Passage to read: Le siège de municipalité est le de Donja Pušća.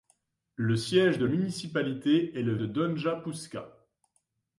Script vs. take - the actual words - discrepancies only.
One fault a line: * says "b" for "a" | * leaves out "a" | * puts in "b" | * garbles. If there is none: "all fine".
all fine